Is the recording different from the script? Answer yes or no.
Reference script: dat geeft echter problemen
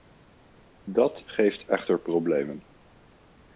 no